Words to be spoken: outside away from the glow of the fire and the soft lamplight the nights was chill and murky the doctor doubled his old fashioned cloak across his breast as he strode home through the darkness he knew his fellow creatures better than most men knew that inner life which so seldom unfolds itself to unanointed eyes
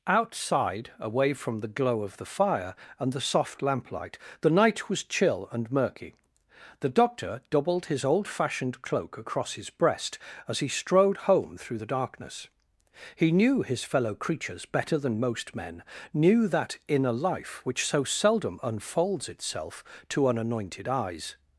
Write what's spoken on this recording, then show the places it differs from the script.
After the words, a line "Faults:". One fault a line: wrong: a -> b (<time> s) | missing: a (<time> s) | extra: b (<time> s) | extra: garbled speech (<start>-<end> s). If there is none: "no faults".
outside away from the glow of the fire and the soft lamplight the night was chill and murky the doctor doubled his old fashioned cloak across his breast as he strode home through the darkness he knew his fellow creatures better than most men knew that inner life which so seldom unfolds itself to unanointed eyes
Faults:
wrong: nights -> night (4.5 s)